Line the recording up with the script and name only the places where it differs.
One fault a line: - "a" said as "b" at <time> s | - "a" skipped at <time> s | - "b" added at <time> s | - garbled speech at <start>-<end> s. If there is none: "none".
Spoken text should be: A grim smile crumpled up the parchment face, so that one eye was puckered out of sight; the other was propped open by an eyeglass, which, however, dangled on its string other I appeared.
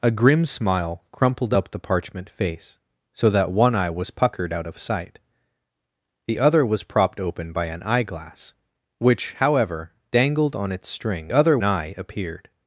none